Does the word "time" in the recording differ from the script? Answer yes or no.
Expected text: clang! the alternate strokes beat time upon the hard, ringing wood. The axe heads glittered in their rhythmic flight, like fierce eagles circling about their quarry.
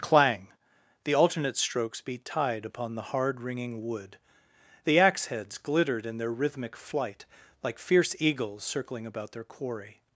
yes